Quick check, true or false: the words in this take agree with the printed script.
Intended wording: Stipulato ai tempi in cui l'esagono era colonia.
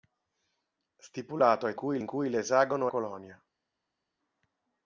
false